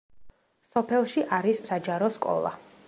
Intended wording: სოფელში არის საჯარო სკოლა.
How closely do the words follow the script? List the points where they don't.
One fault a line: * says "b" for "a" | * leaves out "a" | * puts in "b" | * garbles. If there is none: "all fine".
all fine